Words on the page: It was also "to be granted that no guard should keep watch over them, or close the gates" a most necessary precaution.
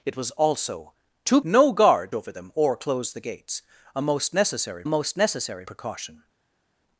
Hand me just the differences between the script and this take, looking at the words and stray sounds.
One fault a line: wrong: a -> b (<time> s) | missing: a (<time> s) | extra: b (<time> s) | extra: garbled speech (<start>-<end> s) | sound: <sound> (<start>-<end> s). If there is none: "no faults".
missing: be granted that (1.4 s)
missing: should keep watch (2.1 s)
extra: most necessary (4.9 s)